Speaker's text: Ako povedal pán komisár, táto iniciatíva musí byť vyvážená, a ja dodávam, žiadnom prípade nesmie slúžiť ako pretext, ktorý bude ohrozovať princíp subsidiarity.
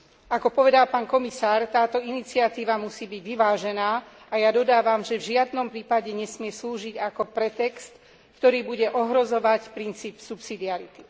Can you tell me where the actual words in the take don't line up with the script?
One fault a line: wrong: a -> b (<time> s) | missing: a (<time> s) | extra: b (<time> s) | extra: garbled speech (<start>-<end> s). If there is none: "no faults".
extra: že v (5.0 s)